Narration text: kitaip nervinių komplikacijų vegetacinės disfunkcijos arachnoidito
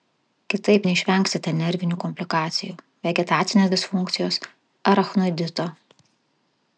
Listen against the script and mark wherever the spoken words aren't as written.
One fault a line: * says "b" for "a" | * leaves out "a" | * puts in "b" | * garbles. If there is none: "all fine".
* puts in "neišvengsite"